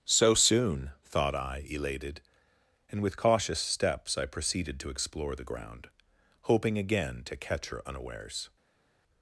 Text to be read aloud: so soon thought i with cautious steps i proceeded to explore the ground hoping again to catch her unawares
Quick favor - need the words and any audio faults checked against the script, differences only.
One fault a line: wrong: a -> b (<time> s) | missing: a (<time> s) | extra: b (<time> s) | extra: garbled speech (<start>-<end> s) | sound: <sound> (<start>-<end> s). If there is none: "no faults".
extra: elated and (1.7 s)